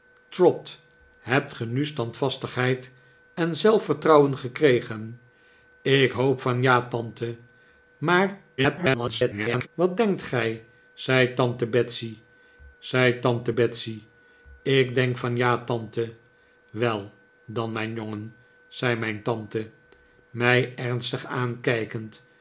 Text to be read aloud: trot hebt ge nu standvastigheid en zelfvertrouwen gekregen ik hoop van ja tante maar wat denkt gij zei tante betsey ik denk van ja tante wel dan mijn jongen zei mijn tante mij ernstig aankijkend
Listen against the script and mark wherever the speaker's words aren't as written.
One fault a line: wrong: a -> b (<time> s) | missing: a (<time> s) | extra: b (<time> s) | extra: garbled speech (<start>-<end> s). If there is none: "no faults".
extra: garbled speech (8.6-9.7 s)
extra: zei tante betsey (12.8 s)